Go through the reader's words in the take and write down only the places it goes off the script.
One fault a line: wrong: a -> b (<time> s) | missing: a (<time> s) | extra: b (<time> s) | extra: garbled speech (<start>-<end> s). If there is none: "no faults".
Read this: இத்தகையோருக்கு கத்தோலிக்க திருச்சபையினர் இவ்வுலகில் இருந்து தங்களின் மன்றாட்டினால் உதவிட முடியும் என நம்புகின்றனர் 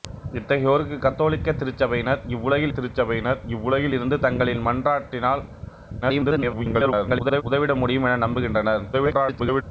extra: திருச்சபையினர் இவ்வுலகில் (2.7 s)
extra: garbled speech (6.0-7.4 s)
extra: garbled speech (8.9-9.6 s)